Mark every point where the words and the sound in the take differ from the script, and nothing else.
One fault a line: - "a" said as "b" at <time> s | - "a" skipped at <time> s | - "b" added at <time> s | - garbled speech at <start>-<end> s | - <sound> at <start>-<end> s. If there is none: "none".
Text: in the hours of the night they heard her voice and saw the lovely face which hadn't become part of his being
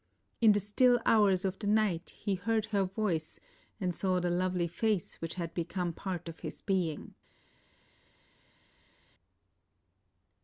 - "still" added at 0.6 s
- "they" said as "he" at 2.1 s
- "hadn't" said as "had" at 5.3 s